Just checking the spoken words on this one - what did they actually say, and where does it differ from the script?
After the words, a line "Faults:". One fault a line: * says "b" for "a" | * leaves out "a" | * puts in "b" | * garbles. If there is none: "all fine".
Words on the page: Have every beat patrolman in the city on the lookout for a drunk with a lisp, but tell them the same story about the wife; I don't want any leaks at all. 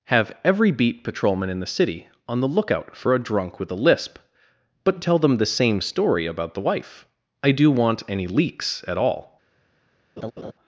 Have every beat patrolman in the city on the lookout for a drunk with a lisp, but tell them the same story about the wife; I do want any leaks at all.
Faults:
* says "do" for "don't"